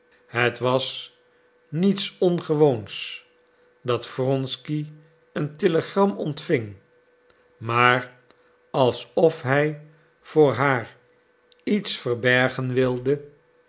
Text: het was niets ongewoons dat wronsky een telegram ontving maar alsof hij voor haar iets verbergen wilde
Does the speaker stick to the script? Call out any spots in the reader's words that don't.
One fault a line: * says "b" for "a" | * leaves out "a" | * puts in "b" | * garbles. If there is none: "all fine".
all fine